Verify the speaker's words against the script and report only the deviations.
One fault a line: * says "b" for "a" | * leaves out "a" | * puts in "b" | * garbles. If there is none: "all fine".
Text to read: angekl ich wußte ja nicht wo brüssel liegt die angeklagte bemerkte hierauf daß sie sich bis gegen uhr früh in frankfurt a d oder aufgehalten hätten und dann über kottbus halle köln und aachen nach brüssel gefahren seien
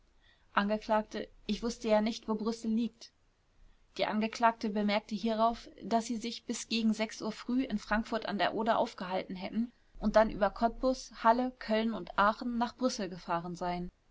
all fine